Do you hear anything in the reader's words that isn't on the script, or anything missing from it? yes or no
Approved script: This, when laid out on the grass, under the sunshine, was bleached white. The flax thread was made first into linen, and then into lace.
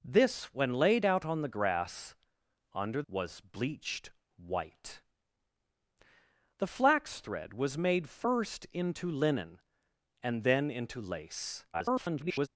yes